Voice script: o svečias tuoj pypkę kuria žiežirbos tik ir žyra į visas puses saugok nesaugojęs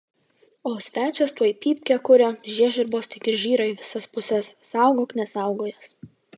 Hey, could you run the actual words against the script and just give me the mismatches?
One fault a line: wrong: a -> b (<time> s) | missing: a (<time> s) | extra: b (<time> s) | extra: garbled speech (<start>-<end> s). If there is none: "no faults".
no faults